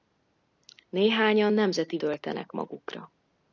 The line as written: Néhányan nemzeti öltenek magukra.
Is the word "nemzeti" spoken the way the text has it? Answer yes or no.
yes